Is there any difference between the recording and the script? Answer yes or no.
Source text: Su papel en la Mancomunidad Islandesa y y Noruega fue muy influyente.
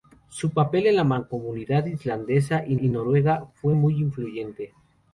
no